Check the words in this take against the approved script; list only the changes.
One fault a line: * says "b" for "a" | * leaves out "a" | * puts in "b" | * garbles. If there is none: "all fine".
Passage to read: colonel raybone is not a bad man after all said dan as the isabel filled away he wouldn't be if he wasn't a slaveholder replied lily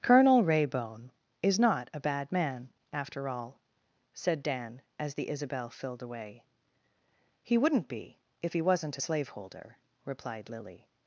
all fine